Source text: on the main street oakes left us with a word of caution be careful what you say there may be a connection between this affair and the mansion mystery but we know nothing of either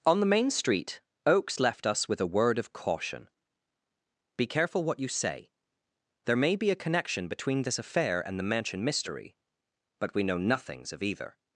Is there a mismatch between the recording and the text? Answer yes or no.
yes